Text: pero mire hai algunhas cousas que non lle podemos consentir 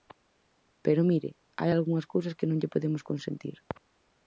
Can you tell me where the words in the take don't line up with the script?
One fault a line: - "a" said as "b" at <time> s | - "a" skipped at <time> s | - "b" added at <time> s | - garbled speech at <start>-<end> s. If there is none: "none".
none